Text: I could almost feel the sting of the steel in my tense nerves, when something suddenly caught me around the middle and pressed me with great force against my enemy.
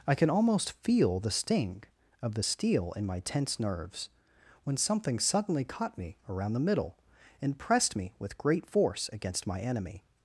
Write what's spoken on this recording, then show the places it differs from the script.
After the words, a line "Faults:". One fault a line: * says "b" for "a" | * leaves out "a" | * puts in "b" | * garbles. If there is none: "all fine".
I can almost feel the sting of the steel in my tense nerves, when something suddenly caught me around the middle and pressed me with great force against my enemy.
Faults:
* says "can" for "could"